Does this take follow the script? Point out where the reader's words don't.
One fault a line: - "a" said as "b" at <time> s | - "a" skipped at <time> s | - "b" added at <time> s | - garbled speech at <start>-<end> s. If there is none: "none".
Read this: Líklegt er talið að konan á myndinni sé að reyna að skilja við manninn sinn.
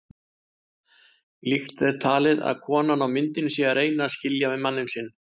none